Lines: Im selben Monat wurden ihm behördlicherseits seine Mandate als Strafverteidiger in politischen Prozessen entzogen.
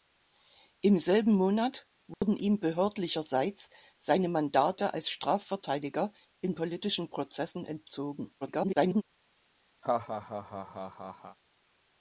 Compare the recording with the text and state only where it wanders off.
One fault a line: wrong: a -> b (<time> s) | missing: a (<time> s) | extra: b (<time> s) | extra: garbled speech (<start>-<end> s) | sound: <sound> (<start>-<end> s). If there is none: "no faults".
sound: dropout (2.1-2.2 s)
extra: garbled speech (8.4-9.0 s)
sound: laugh (9.8-11.4 s)